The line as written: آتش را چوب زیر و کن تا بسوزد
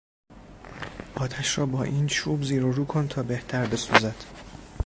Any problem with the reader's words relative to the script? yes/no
yes